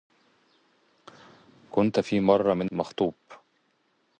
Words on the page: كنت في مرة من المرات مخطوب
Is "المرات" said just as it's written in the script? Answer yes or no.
no